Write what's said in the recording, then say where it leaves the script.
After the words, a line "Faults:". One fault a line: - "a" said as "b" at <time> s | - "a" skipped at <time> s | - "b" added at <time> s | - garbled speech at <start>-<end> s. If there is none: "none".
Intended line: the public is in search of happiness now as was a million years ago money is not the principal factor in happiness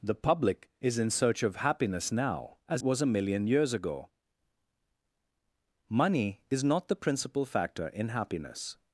the public is in search of happiness now as was a million years ago money is not the principal factor in happiness
Faults:
none